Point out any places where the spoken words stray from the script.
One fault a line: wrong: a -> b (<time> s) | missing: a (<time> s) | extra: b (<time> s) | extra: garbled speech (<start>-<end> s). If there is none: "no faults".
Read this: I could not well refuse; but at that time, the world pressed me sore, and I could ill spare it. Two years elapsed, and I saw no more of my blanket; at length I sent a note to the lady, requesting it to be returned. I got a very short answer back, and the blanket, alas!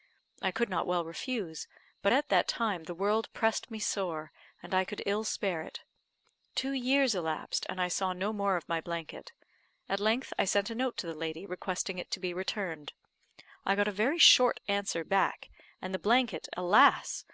no faults